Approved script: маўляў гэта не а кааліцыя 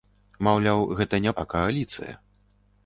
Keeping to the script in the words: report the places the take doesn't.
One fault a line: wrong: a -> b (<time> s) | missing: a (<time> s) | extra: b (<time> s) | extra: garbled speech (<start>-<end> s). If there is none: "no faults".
no faults